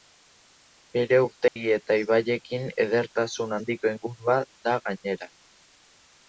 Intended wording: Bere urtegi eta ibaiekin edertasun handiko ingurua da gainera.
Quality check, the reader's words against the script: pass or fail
pass